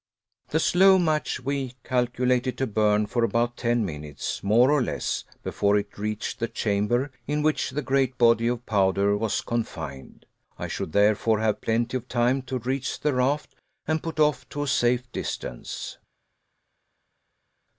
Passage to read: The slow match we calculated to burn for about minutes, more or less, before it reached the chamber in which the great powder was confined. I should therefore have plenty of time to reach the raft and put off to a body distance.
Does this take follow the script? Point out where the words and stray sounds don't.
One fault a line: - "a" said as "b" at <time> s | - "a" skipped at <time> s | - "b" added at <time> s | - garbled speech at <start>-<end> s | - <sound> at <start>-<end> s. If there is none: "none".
- "ten" added at 3.5 s
- "body of" added at 8.2 s
- "body" said as "safe" at 14.7 s